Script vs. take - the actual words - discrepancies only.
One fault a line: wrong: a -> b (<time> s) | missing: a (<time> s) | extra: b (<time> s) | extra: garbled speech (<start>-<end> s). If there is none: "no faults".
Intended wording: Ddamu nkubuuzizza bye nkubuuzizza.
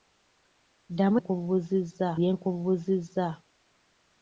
no faults